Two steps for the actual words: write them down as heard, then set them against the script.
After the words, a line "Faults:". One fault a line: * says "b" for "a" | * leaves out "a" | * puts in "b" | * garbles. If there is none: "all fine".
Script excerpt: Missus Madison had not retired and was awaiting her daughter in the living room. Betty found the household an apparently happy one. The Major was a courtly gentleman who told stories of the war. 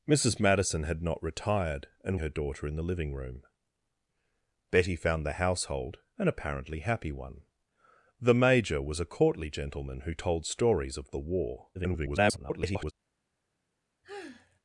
Missus Madison had not retired and her daughter in the living room. Betty found the household an apparently happy one. The Major was a courtly gentleman who told stories of the war. [garbled]
Faults:
* leaves out "was awaiting"
* garbles